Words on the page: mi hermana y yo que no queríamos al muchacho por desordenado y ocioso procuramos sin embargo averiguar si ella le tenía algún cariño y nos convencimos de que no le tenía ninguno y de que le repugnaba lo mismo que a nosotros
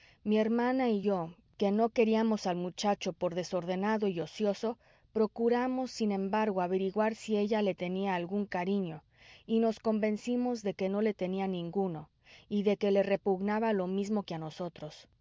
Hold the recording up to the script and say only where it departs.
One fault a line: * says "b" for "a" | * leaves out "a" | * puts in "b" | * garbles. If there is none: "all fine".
all fine